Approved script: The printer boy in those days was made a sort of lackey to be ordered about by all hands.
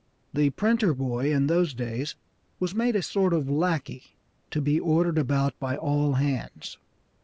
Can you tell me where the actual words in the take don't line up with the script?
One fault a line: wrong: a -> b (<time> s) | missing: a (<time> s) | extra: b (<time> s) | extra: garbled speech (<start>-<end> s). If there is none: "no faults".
no faults